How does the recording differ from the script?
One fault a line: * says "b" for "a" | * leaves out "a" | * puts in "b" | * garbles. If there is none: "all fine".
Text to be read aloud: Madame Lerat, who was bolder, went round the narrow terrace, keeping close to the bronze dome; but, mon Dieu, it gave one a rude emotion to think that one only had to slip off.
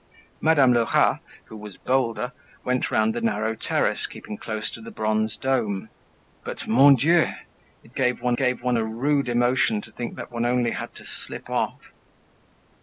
* puts in "gave one"